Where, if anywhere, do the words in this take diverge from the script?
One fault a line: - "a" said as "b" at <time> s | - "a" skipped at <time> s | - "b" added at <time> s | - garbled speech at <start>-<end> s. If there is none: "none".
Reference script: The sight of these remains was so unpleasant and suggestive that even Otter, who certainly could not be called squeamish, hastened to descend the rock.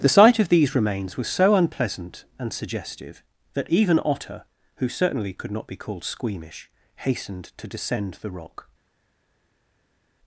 none